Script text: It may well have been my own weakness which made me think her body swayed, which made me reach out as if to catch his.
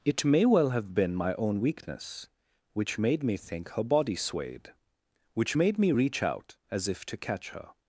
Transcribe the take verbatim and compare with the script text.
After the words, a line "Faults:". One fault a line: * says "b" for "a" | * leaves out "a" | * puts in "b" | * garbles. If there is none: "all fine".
It may well have been my own weakness which made me think her body swayed, which made me reach out as if to catch her.
Faults:
* says "her" for "his"